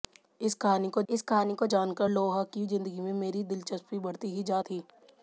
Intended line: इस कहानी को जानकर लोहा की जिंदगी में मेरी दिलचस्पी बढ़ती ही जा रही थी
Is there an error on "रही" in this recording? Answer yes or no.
yes